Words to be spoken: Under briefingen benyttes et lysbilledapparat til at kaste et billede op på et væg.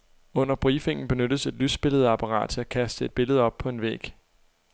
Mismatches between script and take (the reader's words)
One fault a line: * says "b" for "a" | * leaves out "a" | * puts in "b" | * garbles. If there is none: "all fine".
* says "en" for "et"